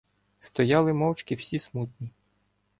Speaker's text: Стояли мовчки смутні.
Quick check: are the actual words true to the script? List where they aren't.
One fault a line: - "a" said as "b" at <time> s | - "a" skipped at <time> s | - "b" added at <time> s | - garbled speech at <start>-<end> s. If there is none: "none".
- "всі" added at 1.4 s